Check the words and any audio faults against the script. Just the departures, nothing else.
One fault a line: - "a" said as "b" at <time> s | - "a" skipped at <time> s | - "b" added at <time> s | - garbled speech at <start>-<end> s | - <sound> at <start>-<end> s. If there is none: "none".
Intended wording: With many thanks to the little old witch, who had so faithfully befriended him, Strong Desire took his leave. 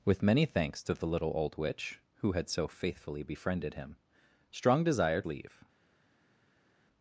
- "took his" skipped at 5.2 s